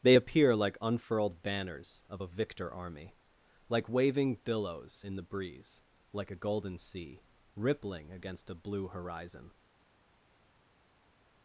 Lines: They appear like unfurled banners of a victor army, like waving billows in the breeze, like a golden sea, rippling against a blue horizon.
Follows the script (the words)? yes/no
yes